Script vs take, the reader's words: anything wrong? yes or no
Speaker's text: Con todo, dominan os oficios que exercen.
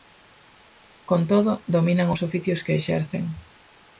no